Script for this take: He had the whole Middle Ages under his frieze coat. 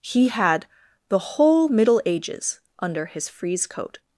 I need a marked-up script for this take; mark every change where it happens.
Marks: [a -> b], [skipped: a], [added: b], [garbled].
He had the whole Middle Ages under his frieze coat.